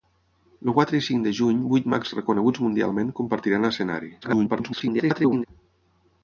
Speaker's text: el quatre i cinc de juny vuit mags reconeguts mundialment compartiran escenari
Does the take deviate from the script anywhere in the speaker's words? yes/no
yes